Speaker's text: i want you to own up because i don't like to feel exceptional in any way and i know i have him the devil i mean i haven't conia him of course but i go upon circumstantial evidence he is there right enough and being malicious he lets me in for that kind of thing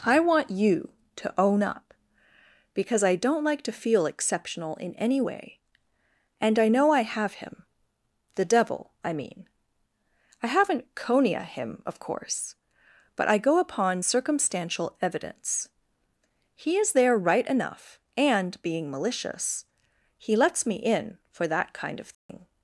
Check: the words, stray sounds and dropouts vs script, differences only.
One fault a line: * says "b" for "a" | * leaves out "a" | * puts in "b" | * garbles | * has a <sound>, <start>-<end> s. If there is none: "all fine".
* has a dropout, 22.1-22.3 s